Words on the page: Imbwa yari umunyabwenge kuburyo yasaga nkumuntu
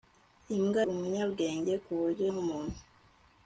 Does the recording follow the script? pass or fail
fail